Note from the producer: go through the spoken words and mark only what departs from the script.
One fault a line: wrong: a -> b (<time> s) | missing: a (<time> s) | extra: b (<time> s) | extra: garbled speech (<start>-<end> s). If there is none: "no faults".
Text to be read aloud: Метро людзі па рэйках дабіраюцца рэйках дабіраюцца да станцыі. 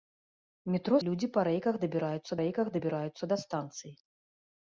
no faults